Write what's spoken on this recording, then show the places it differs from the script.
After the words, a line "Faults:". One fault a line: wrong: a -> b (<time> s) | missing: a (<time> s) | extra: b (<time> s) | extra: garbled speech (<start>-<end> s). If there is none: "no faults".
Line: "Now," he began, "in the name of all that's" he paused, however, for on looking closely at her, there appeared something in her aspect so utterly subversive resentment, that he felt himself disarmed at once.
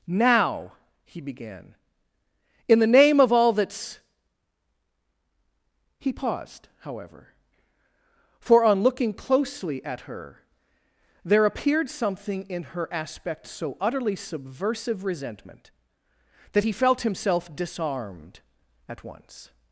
"Now," he began, "in the name of all that's" he paused, however, for on looking closely at her, there appeared something in her aspect so utterly subversive resentment, that he felt himself disarmed at once.
Faults:
no faults